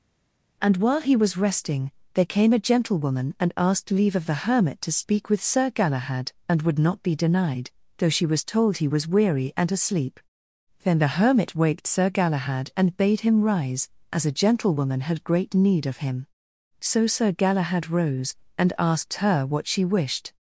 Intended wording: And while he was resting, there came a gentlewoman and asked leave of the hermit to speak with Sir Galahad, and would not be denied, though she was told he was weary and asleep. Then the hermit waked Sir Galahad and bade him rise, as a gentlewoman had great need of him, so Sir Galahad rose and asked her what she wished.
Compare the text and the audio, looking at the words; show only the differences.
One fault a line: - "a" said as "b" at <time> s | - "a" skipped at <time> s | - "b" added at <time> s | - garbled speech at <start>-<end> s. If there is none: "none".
none